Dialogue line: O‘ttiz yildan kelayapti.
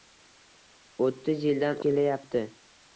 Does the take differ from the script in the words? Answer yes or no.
no